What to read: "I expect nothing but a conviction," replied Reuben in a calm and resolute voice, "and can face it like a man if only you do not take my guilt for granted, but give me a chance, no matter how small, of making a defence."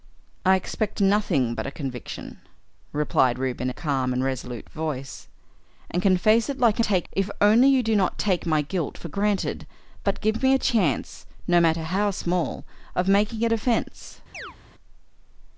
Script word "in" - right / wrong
wrong